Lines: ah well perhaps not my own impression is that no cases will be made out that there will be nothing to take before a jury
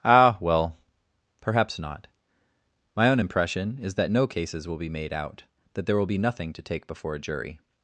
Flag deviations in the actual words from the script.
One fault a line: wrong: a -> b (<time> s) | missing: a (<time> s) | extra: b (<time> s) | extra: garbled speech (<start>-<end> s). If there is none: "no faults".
no faults